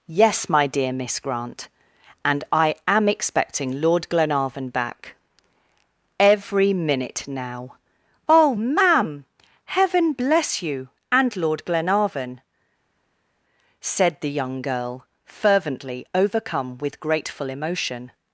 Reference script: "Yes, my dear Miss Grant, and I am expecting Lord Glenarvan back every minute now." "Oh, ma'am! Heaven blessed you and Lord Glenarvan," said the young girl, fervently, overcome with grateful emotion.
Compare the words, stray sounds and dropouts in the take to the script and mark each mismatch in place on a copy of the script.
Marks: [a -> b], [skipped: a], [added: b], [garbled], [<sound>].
"Yes, my dear Miss Grant, and I am expecting Lord Glenarvan back every minute now." "Oh, ma'am! Heaven [blessed -> bless] you and Lord Glenarvan," said the young girl, fervently, overcome with grateful emotion.